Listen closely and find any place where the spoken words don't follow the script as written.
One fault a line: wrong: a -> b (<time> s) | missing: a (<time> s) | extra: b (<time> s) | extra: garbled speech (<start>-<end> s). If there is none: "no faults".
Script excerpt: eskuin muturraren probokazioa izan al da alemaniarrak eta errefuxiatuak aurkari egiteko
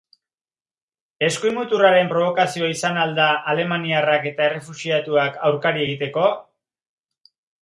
no faults